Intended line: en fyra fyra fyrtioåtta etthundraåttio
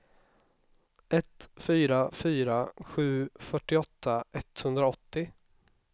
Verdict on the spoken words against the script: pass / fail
fail